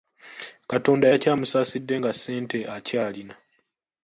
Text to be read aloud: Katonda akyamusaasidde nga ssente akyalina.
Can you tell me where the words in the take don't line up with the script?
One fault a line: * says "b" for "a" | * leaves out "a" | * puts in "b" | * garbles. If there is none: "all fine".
all fine